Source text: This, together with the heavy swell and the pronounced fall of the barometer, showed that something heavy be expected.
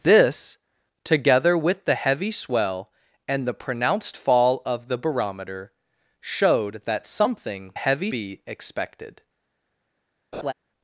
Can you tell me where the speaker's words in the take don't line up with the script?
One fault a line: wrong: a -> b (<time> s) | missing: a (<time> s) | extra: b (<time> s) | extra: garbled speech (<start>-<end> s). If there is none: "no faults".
no faults